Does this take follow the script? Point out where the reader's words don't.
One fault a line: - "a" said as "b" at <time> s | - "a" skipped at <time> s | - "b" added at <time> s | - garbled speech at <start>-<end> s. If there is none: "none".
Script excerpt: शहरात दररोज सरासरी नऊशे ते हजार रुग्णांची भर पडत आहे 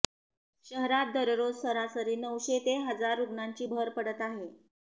none